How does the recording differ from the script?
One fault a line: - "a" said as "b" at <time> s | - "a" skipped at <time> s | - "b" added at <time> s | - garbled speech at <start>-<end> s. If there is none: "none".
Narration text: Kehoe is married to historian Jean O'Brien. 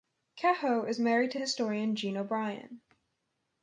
none